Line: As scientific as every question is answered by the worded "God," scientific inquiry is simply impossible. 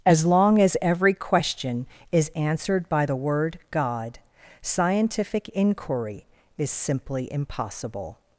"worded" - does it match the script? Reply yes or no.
no